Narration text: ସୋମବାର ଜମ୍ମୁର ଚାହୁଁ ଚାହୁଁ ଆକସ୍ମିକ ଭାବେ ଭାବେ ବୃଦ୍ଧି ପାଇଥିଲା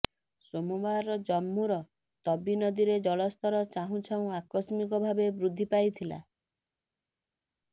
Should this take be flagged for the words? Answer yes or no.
yes